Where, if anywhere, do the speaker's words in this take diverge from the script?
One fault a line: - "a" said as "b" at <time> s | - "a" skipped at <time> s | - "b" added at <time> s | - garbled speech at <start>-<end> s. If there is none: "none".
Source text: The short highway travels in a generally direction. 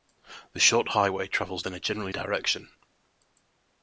none